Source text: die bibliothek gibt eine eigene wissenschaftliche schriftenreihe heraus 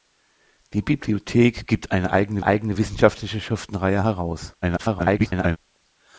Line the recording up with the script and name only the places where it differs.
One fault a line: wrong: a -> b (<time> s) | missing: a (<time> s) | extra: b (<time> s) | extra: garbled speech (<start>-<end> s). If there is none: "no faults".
extra: eigene (2.4 s)
extra: garbled speech (4.6-5.6 s)